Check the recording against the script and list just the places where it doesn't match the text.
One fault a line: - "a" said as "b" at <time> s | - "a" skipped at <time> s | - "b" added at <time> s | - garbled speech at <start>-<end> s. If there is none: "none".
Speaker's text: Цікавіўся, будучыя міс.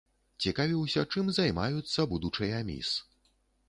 - "чым займаюцца" added at 1.1 s